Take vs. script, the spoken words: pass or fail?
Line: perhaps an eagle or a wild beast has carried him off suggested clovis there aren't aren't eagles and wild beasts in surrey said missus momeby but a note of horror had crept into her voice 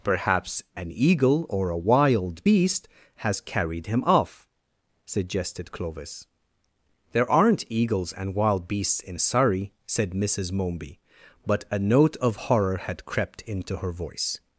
fail